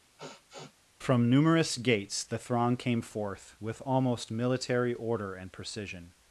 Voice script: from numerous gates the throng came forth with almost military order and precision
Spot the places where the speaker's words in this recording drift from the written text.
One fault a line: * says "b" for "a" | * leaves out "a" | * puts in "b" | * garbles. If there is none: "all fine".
all fine